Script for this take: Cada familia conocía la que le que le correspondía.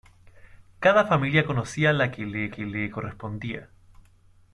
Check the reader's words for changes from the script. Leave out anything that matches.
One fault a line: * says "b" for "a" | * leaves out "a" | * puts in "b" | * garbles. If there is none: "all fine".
all fine